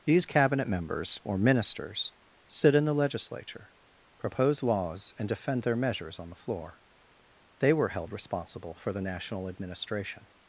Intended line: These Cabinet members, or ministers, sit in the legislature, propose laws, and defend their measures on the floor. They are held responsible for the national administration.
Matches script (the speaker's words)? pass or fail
fail